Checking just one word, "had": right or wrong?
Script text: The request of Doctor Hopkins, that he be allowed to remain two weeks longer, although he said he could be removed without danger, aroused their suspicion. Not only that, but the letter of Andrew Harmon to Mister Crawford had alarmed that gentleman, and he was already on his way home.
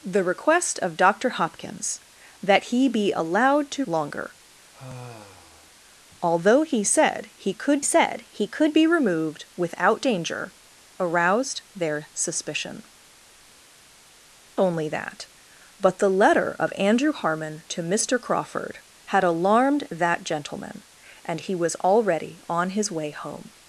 right